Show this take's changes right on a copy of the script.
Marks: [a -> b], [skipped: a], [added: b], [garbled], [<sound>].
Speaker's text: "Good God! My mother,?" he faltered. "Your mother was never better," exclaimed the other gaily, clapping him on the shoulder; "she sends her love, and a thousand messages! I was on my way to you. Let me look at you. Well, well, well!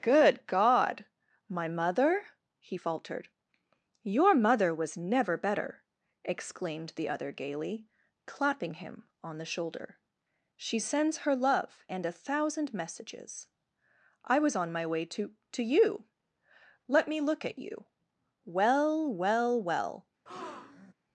"Good God! My mother,?" he faltered. "Your mother was never better," exclaimed the other gaily, clapping him on the shoulder; "she sends her love, and a thousand messages! I was on my way to [added: to] you. Let me look at you. Well, well, well! [breath]